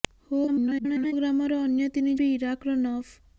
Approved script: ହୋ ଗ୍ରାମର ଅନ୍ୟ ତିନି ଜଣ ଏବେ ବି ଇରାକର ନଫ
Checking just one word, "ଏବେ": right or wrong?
wrong